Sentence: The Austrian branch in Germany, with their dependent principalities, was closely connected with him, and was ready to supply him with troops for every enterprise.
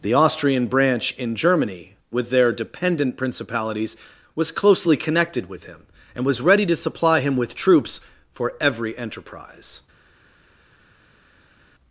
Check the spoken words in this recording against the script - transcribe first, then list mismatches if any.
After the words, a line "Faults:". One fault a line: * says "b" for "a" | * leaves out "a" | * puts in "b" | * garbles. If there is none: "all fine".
The Austrian branch in Germany, with their dependent principalities, was closely connected with him, and was ready to supply him with troops for every enterprise.
Faults:
all fine